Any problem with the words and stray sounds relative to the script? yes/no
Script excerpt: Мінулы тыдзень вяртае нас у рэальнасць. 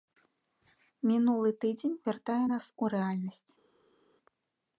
no